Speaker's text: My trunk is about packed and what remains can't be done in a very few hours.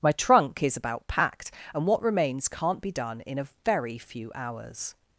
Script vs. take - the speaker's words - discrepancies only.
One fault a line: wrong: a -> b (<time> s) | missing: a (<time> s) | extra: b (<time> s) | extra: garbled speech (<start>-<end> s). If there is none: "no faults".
no faults